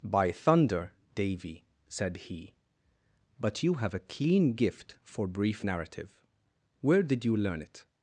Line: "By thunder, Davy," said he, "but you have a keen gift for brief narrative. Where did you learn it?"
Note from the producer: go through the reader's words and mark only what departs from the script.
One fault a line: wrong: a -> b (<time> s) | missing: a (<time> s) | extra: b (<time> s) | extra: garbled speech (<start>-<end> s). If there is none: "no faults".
no faults